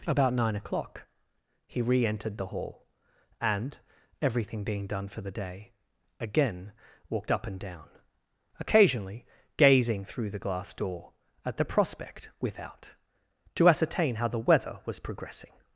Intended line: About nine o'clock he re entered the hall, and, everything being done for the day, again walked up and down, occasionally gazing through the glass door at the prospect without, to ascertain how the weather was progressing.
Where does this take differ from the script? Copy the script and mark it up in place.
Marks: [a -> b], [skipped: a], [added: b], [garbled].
About nine o'clock he re entered the hall, and, everything being done for the day, again walked up and down, occasionally gazing through the glass door at the prospect without, to ascertain how the weather was progressing.